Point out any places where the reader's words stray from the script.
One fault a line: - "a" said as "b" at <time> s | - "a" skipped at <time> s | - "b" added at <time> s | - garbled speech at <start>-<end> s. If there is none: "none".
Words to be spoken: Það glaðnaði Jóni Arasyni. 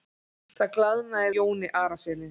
none